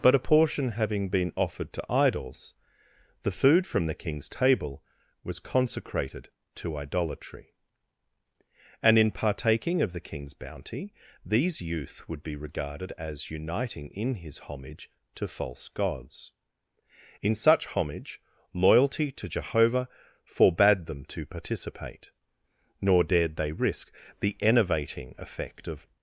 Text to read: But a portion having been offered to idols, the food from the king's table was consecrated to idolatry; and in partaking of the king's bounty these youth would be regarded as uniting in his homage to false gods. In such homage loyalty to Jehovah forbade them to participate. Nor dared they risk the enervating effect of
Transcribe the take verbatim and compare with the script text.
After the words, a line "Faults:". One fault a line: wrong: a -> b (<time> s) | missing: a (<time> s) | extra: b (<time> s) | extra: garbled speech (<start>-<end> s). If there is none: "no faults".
But a portion having been offered to idols, the food from the king's table was consecrated to idolatry; and in partaking of the king's bounty these youth would be regarded as uniting in his homage to false gods. In such homage loyalty to Jehovah forbade them to participate. Nor dared they risk the enervating effect of
Faults:
no faults